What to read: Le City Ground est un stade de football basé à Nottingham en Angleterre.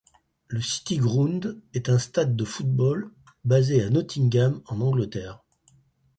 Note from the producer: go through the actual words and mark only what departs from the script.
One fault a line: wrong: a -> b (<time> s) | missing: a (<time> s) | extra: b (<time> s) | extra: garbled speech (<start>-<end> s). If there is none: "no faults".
no faults